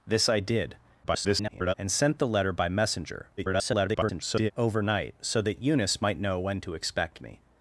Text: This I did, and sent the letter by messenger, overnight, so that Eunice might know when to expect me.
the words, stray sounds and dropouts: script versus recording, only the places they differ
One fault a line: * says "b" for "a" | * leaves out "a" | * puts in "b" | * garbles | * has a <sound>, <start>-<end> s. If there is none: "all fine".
* garbles
* garbles